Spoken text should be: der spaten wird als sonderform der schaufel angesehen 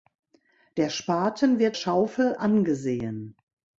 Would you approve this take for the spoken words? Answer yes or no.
no